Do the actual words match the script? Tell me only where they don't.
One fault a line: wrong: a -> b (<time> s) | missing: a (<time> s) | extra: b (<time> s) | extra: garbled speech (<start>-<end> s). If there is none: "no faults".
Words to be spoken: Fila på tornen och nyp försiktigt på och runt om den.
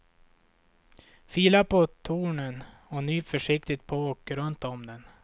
no faults